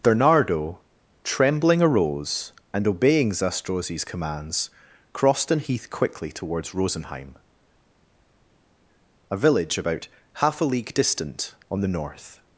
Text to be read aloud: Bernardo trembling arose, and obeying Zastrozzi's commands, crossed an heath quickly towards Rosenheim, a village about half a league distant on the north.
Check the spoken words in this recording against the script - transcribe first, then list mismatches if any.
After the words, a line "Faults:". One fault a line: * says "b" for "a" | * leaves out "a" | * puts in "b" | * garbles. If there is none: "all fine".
Bernardo trembling arose, and obeying Zastrozzi's commands, crossed an heath quickly towards Rosenheim, a village about half a league distant on the north.
Faults:
all fine